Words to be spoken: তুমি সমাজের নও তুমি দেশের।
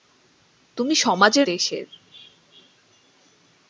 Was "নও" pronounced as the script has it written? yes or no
no